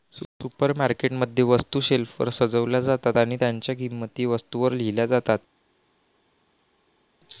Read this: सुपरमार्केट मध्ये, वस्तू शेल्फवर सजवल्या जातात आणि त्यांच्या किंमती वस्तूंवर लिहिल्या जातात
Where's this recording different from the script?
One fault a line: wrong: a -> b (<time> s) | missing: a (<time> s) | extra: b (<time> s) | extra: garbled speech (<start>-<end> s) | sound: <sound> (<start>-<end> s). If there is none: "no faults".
no faults